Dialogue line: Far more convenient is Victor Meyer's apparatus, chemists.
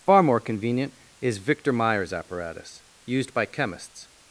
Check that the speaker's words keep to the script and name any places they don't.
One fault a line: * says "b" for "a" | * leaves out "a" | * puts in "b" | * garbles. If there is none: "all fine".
* puts in "used by"